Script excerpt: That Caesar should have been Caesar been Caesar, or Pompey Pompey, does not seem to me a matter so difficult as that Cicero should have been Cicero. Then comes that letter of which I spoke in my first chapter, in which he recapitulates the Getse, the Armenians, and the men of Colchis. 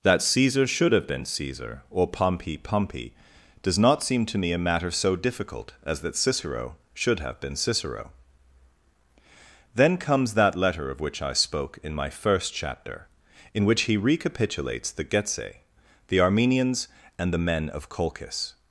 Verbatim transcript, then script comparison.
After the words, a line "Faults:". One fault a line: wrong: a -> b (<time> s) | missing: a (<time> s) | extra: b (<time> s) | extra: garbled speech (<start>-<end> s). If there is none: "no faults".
That Caesar should have been Caesar, or Pompey Pompey, does not seem to me a matter so difficult as that Cicero should have been Cicero. Then comes that letter of which I spoke in my first chapter, in which he recapitulates the Getse, the Armenians, and the men of Colchis.
Faults:
missing: been Caesar (1.8 s)